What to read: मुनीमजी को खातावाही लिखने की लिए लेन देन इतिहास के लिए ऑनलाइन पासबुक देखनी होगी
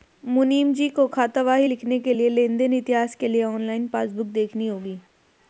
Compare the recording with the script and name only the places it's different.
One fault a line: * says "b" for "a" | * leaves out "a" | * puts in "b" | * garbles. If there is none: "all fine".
* says "के" for "की"